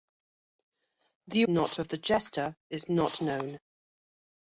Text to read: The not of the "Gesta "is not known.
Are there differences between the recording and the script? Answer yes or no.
no